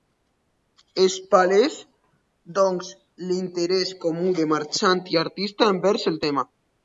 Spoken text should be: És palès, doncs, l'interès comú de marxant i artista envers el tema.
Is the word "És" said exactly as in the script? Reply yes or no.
yes